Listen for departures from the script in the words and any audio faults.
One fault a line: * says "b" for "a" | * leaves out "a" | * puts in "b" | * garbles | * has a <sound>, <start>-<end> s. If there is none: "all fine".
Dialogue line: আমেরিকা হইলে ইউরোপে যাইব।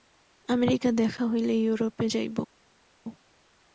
* puts in "দেখা"